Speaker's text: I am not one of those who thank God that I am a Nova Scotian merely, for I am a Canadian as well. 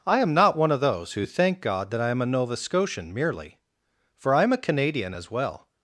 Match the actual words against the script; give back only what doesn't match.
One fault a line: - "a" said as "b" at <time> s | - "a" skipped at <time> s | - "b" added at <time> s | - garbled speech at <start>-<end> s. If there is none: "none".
none